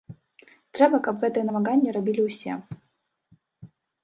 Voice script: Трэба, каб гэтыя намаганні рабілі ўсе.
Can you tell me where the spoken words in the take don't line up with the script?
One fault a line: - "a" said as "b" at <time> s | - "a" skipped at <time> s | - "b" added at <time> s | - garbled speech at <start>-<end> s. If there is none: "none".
none